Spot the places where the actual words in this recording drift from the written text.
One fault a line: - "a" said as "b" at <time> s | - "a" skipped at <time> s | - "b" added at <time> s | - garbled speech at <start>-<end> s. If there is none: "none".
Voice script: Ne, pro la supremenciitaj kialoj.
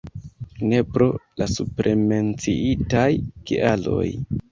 none